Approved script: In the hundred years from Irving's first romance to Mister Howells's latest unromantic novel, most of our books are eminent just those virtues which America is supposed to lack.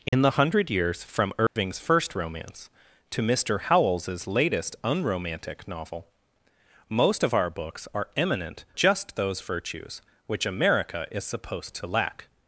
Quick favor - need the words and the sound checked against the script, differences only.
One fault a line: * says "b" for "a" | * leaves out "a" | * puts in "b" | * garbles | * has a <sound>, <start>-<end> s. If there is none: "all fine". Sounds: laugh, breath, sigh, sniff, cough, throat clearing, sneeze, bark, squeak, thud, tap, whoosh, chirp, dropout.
* has a dropout, 0.1-0.1 s
* has a dropout, 1.5-1.6 s